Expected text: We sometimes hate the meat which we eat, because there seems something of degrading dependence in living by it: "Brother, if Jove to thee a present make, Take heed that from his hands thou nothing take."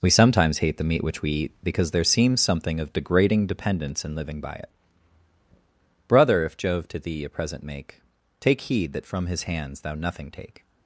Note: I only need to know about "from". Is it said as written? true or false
true